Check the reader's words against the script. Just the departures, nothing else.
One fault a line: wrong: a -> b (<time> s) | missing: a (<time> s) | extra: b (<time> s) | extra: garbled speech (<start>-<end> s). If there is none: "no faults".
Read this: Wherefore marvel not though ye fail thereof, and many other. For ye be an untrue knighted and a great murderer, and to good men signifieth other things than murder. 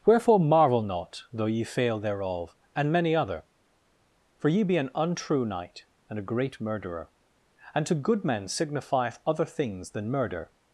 wrong: knighted -> knight (5.5 s)